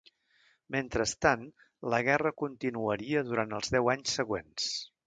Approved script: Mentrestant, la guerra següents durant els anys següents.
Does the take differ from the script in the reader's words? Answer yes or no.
yes